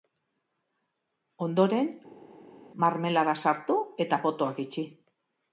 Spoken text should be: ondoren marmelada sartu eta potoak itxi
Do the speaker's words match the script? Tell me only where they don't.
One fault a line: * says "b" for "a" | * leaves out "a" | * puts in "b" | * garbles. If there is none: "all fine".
all fine